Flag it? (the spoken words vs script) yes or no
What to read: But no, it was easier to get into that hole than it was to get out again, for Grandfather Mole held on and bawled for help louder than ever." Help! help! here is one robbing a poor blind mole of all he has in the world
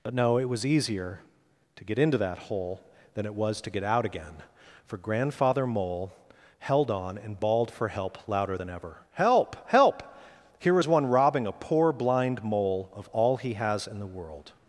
no